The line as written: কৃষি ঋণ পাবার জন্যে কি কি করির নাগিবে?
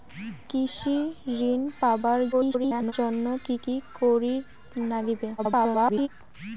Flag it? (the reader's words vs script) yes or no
yes